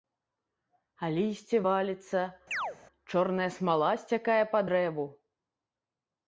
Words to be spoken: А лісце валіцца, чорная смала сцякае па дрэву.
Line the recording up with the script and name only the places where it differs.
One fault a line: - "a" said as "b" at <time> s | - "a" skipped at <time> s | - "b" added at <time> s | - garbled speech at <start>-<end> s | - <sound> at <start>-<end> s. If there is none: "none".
- chirp at 2.5-2.8 s